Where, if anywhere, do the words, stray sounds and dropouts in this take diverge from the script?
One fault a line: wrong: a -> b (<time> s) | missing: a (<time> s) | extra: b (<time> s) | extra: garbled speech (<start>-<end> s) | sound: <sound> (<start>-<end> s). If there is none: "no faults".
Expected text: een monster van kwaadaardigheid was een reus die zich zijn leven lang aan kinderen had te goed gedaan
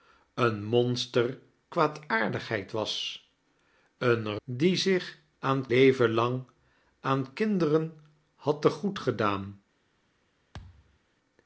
missing: van (1.4 s)
missing: reus (4.4 s)
wrong: zijn -> aan (5.4 s)
sound: thud (10.5-11.0 s)